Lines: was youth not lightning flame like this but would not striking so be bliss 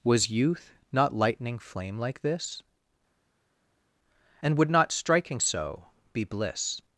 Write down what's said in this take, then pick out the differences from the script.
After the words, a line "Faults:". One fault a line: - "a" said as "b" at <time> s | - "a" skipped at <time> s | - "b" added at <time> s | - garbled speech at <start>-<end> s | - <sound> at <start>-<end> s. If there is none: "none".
was youth not lightning flame like this and would not striking so be bliss
Faults:
- "but" said as "and" at 4.4 s